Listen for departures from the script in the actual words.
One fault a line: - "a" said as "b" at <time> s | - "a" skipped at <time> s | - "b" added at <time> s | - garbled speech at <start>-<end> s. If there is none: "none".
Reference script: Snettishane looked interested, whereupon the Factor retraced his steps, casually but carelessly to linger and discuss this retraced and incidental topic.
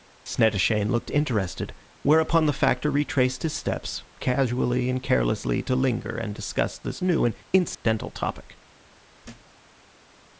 - "but" said as "and" at 4.9 s
- "retraced" said as "new" at 7.0 s